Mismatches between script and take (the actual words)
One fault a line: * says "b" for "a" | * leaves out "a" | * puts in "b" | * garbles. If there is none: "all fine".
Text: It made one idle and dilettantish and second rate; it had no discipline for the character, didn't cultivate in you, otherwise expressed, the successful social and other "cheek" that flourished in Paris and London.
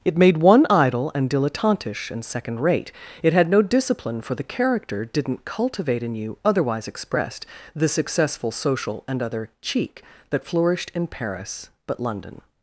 * says "but" for "and"